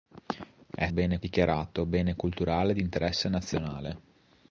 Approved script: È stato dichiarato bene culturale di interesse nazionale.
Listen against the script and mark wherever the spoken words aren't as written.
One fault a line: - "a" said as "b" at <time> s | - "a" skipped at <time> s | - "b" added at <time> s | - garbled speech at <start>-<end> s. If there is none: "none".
- "stato" said as "bene" at 0.9 s